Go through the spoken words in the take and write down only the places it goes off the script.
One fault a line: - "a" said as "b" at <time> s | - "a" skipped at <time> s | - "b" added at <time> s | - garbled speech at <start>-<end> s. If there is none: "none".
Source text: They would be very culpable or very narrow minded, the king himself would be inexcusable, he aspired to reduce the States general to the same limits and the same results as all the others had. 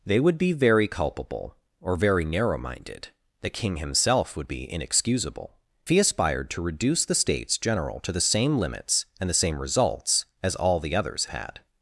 none